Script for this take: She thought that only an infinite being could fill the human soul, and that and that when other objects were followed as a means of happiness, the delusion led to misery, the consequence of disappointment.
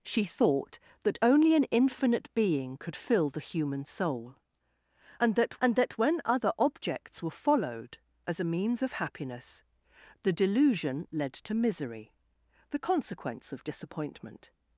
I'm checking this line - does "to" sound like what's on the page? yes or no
yes